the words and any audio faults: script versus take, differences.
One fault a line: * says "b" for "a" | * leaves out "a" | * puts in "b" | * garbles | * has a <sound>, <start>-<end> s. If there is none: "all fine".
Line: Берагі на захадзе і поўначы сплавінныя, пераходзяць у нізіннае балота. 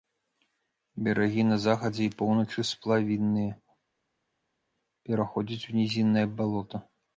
all fine